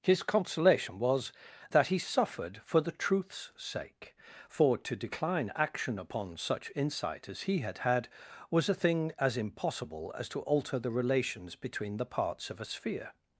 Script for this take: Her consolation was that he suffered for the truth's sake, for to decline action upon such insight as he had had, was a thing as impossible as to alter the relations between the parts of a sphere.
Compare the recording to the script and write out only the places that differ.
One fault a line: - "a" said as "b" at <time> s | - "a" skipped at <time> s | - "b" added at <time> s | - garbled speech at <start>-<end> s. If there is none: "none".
- "Her" said as "His" at 0.0 s